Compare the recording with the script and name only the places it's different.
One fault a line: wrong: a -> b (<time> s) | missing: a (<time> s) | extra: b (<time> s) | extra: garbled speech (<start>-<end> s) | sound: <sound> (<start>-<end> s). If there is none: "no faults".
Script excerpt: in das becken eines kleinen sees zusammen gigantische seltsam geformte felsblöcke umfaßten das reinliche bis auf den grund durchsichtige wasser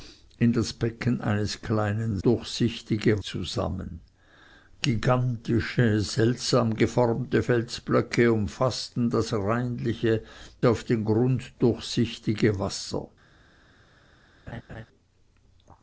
wrong: sees -> durchsichtige (2.2 s)
missing: bis (10.2 s)
sound: laugh (14.5-14.9 s)